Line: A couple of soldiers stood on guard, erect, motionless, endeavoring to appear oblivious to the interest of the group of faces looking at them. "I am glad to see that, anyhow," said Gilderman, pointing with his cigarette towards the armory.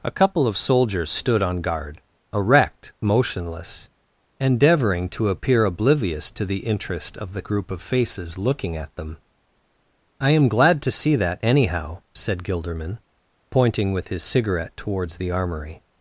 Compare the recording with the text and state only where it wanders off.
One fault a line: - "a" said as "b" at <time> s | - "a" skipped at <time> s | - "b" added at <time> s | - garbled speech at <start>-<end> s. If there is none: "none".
none